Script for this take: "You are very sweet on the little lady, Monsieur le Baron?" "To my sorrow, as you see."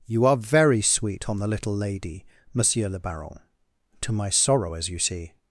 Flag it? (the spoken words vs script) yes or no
no